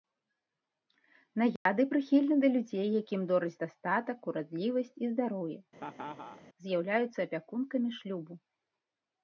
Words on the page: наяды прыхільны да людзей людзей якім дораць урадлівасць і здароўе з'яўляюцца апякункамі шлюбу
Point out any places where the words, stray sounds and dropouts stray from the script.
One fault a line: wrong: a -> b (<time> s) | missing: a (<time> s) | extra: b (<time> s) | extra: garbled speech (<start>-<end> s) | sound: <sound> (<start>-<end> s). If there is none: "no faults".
sound: dropout (1.6-1.7 s)
missing: людзей (2.9 s)
extra: дастатак (3.6 s)
sound: laugh (5.8-6.4 s)